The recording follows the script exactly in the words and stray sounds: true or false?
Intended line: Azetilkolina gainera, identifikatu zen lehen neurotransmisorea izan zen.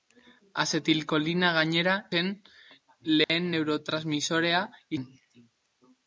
false